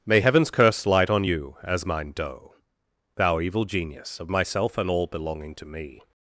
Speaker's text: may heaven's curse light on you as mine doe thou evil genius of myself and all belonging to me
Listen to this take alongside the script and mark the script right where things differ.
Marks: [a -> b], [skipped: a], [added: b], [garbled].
may heaven's curse light on you as mine doe thou evil genius of myself and all belonging to me